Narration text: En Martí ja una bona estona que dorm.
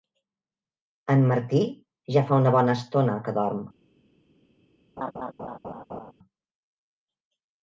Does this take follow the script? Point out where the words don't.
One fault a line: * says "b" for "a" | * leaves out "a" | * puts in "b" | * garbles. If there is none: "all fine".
* puts in "fa"